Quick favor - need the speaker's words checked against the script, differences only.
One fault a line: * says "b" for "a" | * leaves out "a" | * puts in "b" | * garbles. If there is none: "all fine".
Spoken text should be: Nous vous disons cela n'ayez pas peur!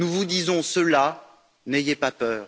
all fine